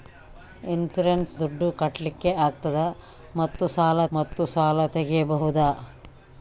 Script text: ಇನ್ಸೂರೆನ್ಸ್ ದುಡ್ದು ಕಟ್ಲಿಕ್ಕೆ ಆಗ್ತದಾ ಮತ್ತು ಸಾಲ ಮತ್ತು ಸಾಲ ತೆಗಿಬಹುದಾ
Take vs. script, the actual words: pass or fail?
pass